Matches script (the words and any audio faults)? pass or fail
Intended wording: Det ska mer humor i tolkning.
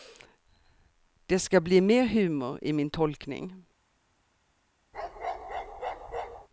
fail